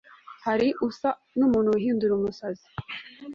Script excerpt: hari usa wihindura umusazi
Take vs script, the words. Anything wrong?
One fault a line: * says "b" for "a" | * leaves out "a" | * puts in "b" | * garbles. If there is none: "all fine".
* puts in "n'umuntu"